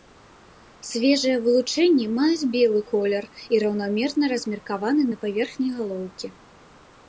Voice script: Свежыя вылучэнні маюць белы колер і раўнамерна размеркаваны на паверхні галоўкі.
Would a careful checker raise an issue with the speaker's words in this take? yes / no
no